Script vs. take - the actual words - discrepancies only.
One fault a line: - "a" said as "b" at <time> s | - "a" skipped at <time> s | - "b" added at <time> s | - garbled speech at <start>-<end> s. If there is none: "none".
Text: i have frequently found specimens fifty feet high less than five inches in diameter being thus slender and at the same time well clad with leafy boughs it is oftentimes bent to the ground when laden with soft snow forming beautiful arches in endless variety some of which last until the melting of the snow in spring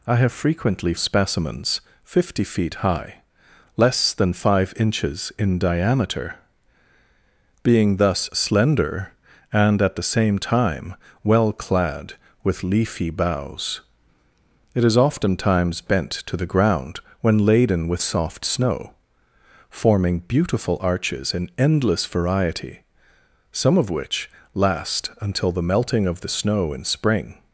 - "found" skipped at 0.9 s